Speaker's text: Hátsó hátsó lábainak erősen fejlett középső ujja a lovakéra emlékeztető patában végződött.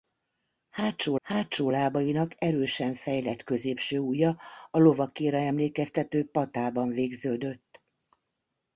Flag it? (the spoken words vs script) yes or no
no